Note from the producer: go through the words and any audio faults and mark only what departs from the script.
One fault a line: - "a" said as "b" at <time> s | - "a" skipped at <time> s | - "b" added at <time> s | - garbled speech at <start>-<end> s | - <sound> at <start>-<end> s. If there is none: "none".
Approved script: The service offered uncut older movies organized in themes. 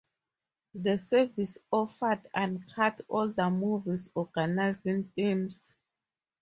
none